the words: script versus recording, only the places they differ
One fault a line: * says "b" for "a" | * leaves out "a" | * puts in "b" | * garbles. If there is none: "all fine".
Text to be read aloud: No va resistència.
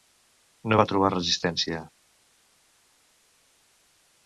* puts in "trobar"